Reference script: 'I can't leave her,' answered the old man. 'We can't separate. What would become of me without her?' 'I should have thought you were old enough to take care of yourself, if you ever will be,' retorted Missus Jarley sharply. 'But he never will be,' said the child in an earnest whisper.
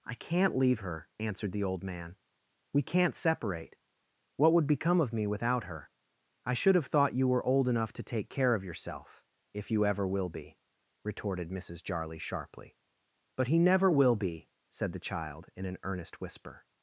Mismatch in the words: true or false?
false